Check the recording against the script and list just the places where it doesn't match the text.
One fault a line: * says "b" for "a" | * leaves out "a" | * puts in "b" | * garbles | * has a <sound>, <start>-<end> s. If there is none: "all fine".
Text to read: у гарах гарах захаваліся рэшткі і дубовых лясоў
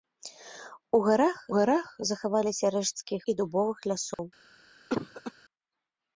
* has a dropout, 4.1-4.2 s
* has a cough, 4.9-5.3 s